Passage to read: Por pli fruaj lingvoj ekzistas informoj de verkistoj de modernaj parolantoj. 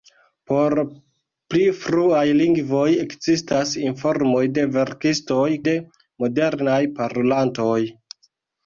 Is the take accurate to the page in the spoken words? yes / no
yes